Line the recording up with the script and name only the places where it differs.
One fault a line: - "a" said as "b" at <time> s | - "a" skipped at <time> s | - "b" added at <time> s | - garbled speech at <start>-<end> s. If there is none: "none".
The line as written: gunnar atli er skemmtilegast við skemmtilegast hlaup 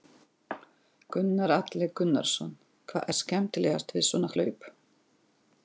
- "gunnarsson hvað" added at 2.0 s
- "skemmtilegast" said as "svona" at 4.1 s